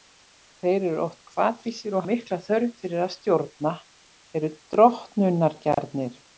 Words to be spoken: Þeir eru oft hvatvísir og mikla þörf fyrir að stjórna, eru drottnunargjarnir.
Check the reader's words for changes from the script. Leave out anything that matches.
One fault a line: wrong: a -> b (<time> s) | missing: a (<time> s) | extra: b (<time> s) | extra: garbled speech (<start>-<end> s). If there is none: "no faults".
no faults